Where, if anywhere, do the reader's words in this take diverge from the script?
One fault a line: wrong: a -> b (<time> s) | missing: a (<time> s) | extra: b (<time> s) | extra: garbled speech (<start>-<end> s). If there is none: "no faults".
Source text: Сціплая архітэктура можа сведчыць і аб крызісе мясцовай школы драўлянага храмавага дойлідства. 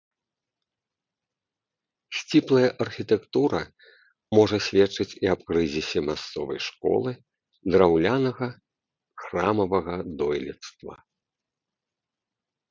no faults